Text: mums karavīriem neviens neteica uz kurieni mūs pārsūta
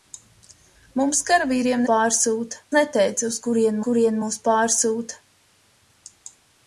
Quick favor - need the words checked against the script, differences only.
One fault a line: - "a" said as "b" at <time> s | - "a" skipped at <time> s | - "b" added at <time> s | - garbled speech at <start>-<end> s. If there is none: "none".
- "neviens" said as "pārsūta" at 1.9 s
- "kurieni" added at 3.9 s